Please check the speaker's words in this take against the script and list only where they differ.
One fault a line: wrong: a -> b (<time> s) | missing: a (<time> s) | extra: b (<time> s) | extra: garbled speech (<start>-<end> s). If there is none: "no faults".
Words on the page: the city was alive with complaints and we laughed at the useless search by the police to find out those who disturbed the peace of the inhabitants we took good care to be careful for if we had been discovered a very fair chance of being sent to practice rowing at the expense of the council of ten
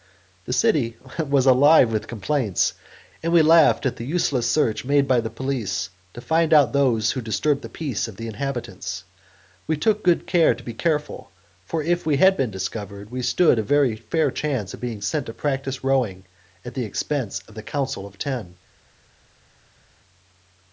extra: made (4.8 s)
extra: we stood (13.1 s)